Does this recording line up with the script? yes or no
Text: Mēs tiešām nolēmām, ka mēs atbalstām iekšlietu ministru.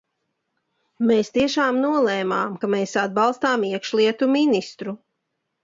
yes